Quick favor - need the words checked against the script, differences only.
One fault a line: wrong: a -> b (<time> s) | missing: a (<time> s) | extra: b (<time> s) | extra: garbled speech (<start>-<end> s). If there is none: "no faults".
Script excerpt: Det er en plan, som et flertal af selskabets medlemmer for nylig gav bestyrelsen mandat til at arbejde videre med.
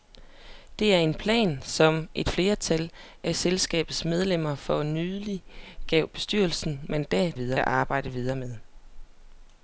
wrong: til -> videre (7.3 s)